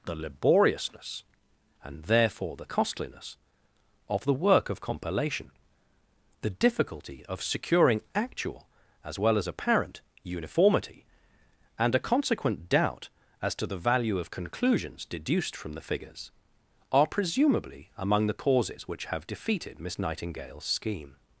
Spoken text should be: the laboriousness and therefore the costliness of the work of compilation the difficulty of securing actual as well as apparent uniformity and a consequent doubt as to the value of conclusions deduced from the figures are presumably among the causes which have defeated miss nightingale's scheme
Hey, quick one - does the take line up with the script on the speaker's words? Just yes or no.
yes